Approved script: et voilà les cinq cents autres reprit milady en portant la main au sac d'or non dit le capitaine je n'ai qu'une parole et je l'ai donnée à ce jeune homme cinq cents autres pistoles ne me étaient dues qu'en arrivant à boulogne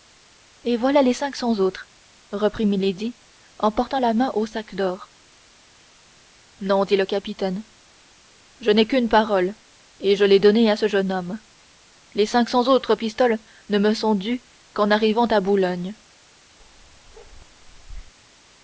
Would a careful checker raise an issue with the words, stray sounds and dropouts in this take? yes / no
yes